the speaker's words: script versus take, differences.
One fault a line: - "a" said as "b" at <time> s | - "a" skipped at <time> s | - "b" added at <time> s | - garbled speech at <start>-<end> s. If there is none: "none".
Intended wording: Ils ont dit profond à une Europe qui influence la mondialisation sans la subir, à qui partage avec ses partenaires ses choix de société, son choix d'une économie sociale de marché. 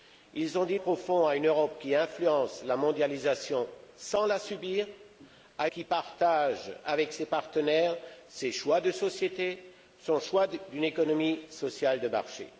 none